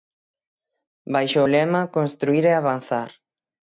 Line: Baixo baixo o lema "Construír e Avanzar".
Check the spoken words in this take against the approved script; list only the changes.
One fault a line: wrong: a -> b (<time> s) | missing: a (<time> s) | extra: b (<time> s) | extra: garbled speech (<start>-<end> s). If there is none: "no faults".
missing: baixo (1.4 s)